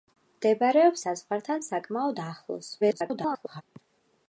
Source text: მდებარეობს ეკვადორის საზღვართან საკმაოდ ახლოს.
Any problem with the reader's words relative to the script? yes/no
yes